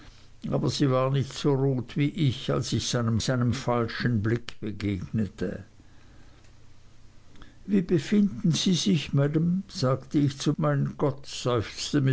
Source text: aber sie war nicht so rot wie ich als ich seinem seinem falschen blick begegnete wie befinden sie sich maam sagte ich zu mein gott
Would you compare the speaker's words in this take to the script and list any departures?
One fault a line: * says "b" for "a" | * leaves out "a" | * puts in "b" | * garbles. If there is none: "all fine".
all fine